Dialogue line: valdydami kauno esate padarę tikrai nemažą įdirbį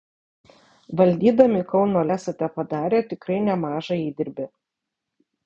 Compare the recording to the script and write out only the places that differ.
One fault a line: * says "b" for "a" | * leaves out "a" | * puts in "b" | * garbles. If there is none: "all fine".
all fine